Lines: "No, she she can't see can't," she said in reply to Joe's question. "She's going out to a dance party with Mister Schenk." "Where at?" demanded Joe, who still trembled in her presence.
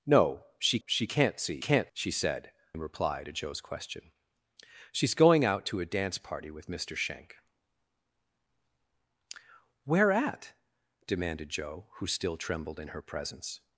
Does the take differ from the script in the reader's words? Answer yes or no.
no